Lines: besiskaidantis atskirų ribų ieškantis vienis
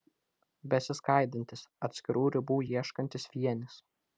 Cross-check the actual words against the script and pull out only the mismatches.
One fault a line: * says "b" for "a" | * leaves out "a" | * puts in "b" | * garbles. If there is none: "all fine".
all fine